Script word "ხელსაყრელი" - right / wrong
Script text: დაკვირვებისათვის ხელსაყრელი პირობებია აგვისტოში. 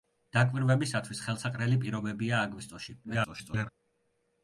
right